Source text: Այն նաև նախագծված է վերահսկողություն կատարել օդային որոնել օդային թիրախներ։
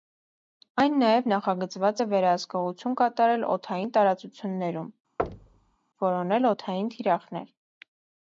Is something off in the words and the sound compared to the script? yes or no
yes